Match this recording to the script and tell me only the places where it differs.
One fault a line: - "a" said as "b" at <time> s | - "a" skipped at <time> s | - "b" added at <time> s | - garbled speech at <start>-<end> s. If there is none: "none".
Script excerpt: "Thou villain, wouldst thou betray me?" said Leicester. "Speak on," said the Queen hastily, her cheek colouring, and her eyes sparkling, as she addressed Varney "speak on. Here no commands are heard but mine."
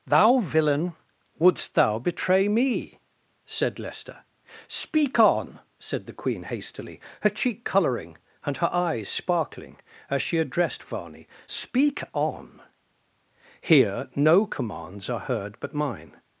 none